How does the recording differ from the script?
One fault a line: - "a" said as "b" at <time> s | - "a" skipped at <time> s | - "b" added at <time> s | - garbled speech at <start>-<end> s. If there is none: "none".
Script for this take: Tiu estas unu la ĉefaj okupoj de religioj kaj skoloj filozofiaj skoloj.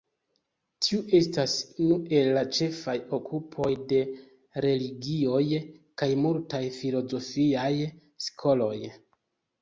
- "el" added at 2.2 s
- "skoloj" said as "multaj" at 6.3 s